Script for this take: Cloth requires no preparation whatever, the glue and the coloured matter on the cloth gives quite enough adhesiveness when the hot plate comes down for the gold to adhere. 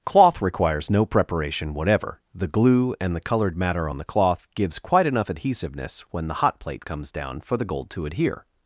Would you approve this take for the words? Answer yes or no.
yes